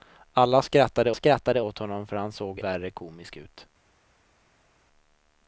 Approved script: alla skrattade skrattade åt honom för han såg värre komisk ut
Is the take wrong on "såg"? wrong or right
right